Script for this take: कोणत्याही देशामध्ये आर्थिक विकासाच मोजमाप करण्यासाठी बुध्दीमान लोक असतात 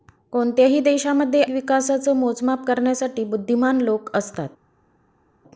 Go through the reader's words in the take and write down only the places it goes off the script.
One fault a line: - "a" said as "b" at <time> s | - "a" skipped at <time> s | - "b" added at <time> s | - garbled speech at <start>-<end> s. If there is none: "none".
- "आर्थिक" skipped at 1.4 s